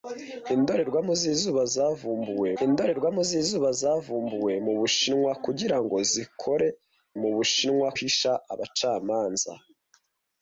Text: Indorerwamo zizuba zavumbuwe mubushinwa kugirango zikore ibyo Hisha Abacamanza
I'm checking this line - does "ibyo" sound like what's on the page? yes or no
no